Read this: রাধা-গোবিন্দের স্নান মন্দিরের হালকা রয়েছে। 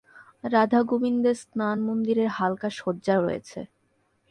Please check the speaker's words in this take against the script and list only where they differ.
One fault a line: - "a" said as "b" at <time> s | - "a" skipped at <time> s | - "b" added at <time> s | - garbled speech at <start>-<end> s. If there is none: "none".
- "সজ্জা" added at 2.7 s